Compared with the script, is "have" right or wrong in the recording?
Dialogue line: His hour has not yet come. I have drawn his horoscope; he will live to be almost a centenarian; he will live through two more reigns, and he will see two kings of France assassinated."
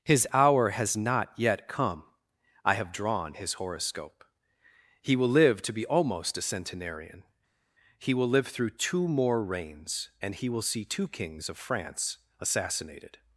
right